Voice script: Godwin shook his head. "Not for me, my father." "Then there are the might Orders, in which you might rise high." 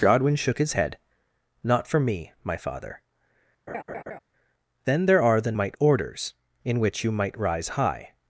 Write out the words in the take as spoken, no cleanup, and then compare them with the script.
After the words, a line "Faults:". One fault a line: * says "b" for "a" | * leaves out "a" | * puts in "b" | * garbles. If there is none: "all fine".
Godwin shook his head. "Not for me, my father." "Then there are the might Orders, in which you might rise high."
Faults:
all fine